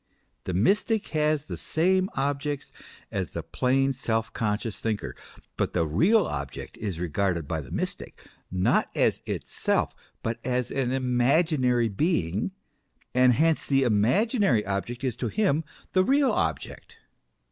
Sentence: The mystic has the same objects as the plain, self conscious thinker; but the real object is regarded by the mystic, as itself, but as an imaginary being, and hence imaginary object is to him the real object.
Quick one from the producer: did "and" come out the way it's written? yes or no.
yes